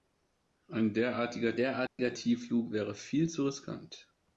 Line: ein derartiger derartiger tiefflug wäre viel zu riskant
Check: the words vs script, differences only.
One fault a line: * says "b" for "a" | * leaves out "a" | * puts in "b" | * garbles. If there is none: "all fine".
all fine